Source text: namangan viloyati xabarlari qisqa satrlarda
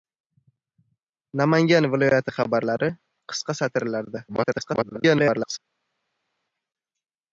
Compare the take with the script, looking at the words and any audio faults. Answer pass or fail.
fail